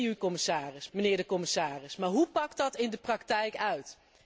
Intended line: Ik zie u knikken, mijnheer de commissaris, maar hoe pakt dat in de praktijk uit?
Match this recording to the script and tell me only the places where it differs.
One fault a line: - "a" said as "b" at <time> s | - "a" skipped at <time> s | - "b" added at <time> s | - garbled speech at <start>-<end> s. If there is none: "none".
- "knikken" said as "commissaris" at 0.2 s